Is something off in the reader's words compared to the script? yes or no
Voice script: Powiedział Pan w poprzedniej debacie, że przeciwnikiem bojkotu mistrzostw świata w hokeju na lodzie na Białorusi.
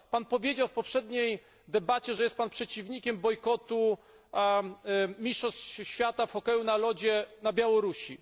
yes